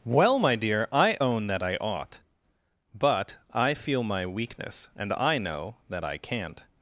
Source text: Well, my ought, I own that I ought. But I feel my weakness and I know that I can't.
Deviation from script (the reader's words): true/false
true